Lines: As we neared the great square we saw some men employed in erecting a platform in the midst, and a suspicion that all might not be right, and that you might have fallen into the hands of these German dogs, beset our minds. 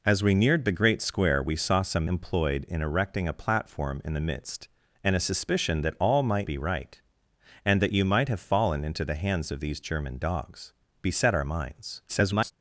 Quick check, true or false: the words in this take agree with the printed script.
false